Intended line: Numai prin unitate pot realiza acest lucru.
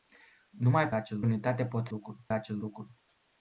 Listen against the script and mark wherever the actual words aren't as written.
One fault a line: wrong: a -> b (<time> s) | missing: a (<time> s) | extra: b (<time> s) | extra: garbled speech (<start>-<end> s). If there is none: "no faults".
wrong: prin -> acest (0.9 s)
wrong: realiza -> lucru (1.9 s)